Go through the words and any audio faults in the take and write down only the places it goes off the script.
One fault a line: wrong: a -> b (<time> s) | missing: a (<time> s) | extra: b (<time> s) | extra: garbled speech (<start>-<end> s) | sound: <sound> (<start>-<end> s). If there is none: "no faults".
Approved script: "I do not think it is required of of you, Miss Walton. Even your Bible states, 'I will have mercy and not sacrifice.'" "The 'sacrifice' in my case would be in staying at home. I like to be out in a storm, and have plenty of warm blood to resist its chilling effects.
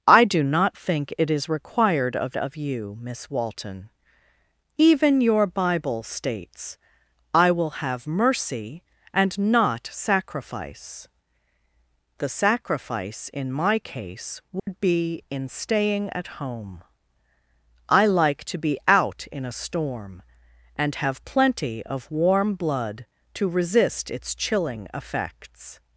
sound: dropout (14.6-14.7 s)